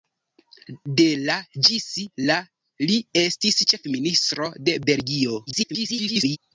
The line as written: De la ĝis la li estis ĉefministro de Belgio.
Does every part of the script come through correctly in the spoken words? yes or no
no